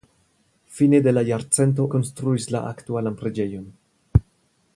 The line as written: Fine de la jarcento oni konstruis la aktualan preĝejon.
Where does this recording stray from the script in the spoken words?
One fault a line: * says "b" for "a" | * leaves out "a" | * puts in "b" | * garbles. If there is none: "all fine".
* leaves out "oni"